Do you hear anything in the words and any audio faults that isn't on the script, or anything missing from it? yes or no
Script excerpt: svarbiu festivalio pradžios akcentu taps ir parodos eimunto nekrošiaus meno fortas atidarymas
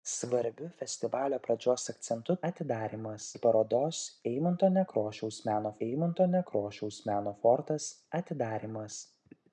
yes